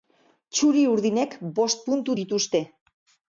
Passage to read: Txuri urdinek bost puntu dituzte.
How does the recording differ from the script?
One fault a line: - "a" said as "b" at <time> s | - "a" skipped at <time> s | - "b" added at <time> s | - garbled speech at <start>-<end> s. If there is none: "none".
none